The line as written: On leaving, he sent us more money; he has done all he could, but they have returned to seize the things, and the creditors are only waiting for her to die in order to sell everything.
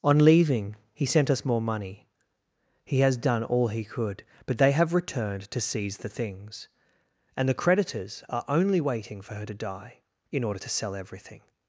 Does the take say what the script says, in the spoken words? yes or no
yes